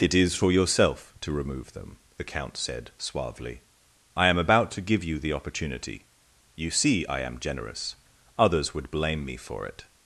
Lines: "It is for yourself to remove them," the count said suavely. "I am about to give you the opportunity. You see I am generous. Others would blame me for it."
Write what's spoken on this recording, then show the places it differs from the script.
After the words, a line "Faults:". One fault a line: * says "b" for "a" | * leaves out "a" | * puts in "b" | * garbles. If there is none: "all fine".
"It is for yourself to remove them," the count said suavely. "I am about to give you the opportunity. You see I am generous. Others would blame me for it."
Faults:
all fine